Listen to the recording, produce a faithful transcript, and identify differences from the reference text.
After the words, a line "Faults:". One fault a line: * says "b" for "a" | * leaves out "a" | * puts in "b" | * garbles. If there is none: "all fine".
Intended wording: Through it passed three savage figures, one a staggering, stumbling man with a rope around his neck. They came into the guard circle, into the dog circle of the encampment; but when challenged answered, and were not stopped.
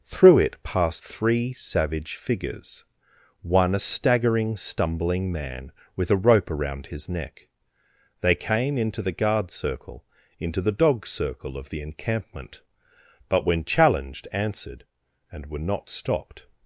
Through it passed three savage figures, one a staggering, stumbling man with a rope around his neck. They came into the guard circle, into the dog circle of the encampment; but when challenged answered, and were not stopped.
Faults:
all fine